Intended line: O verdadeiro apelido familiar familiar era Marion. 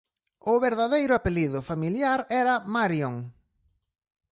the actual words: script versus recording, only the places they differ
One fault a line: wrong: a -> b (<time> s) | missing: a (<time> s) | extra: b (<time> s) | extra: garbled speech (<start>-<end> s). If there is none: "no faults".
missing: familiar (2.2 s)